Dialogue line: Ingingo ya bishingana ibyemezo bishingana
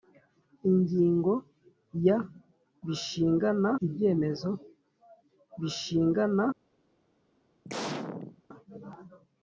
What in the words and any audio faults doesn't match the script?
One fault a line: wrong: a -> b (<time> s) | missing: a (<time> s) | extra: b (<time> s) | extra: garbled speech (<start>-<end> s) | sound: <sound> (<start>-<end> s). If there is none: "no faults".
sound: sneeze (7.6-8.4 s)